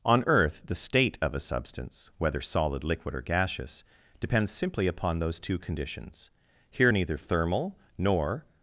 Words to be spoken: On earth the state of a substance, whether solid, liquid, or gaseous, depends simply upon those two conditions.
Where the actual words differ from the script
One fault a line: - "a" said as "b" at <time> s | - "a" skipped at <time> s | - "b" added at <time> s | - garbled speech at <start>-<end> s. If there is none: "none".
- "Here neither thermal nor" added at 6.7 s